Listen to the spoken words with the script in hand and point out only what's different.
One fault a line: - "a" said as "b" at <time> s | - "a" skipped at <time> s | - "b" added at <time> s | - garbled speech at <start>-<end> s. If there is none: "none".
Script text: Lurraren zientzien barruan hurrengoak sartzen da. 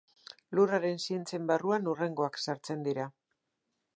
- "da" said as "dira" at 2.9 s